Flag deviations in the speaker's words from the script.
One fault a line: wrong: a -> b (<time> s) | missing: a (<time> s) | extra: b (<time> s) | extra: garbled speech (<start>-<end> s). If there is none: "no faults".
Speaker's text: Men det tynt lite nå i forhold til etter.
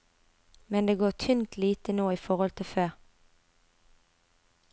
extra: går (0.9 s)
wrong: etter -> før (2.7 s)